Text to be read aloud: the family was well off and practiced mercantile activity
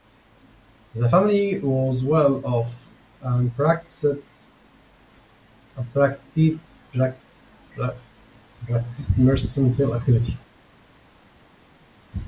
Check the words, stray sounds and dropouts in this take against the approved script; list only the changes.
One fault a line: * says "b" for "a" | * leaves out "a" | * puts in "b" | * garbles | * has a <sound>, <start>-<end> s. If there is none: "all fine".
all fine